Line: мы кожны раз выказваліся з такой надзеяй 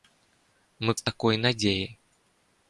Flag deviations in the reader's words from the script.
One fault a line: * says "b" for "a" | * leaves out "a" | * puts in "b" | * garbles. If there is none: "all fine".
* leaves out "кожны раз выказваліся"